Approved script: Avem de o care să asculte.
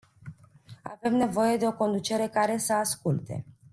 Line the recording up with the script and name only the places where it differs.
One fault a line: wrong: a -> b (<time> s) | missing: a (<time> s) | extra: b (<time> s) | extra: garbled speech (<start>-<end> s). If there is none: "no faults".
extra: nevoie (1.1 s)
extra: conducere (1.7 s)